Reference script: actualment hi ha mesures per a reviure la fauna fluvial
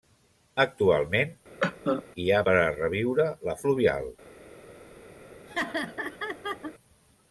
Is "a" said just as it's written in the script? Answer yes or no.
yes